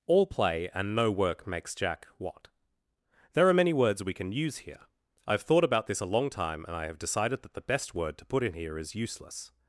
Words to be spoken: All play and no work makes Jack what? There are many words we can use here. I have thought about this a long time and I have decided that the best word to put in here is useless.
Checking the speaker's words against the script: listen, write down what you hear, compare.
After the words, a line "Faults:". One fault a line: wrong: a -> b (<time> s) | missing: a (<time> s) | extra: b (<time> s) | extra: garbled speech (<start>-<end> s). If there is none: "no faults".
All play and no work makes Jack what? There are many words we can use here. I have thought about this a long time and I have decided that the best word to put in here is useless.
Faults:
no faults